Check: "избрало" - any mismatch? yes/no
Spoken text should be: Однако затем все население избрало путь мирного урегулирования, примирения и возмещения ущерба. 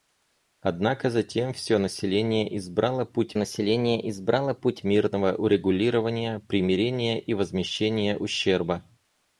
no